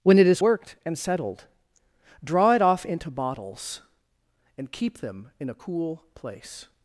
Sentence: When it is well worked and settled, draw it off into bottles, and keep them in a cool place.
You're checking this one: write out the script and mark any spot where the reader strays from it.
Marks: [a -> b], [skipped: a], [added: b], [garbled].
When it is [skipped: well] worked and settled, draw it off into bottles, and keep them in a cool place.